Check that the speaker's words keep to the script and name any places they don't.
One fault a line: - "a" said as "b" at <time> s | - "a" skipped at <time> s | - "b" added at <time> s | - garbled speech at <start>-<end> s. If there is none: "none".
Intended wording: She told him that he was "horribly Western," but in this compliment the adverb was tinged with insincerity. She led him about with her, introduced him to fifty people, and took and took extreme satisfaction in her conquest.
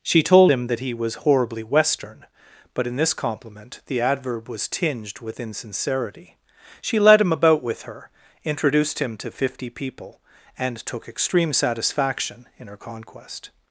- "and took" skipped at 11.1 s